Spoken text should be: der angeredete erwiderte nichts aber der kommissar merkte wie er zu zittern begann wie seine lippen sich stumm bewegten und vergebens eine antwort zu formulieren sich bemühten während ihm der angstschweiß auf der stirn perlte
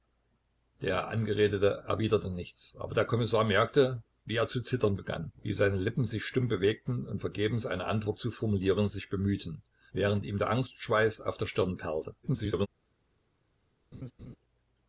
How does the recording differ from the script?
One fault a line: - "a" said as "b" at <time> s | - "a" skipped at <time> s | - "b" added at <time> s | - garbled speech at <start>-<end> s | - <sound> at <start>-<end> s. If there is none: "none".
- garbled speech at 12.2-12.7 s
- laugh at 13.9-14.4 s